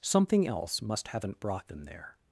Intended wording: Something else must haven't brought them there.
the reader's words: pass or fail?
pass